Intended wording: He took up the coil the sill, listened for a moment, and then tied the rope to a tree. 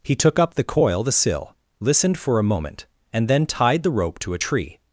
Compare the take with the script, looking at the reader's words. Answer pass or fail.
pass